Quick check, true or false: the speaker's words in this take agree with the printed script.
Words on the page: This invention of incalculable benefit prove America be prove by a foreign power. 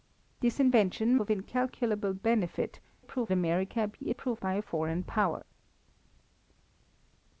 true